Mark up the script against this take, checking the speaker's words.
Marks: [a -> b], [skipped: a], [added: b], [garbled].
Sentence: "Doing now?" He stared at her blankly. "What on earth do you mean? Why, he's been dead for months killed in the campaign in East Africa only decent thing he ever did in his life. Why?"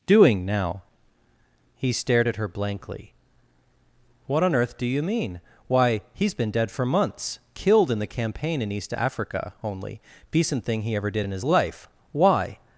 "Doing now?" He stared at her blankly. "What on earth do you mean? Why, he's been dead for months killed in the campaign in East Africa only decent thing he ever did in his life. Why?"